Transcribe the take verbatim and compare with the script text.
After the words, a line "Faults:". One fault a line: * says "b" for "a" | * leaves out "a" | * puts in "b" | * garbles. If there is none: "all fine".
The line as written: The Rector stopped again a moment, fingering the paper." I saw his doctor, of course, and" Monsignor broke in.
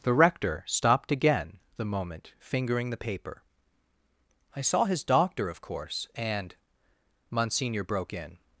The Rector stopped again the moment, fingering the paper." I saw his doctor, of course, and" Monsignor broke in.
Faults:
* says "the" for "a"